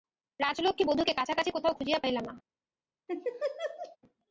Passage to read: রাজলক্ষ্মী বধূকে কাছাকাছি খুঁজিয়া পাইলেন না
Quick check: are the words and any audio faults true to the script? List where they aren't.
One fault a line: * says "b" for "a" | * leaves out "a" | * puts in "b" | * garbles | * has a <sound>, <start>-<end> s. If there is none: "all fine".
* puts in "কোথাও"
* has a laugh, 3.1-4.0 s